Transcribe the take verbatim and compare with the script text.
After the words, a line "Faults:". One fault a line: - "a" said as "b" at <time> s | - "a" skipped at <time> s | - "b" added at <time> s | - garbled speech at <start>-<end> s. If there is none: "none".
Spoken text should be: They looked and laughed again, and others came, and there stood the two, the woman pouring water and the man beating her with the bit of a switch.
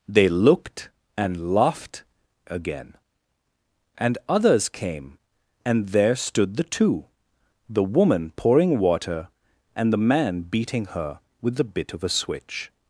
They looked and laughed again, and others came, and there stood the two, the woman pouring water and the man beating her with the bit of a switch.
Faults:
none